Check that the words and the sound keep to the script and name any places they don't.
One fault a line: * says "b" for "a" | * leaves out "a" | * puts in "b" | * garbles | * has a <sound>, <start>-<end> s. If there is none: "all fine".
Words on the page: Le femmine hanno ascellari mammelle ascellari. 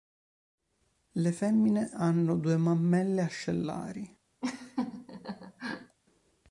* says "due" for "ascellari"
* has a laugh, 4.4-6.0 s